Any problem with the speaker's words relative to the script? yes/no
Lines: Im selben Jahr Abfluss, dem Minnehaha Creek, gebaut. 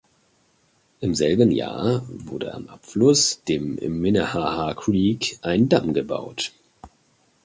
yes